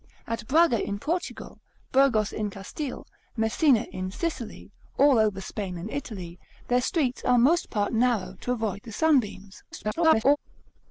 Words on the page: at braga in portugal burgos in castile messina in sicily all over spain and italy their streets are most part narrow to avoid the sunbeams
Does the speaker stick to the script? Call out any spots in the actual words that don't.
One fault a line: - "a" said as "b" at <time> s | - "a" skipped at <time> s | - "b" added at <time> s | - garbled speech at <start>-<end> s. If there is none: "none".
- garbled speech at 9.7-10.4 s